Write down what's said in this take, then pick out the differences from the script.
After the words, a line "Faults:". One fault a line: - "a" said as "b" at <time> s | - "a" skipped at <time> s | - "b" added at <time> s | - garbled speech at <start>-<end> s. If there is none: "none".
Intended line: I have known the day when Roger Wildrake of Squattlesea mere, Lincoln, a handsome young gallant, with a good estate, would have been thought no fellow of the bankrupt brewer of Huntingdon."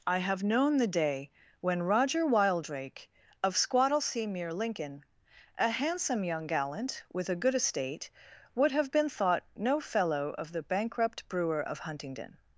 I have known the day when Roger Wildrake of Squattlesea mere, Lincoln, a handsome young gallant, with a good estate, would have been thought no fellow of the bankrupt brewer of Huntingdon."
Faults:
none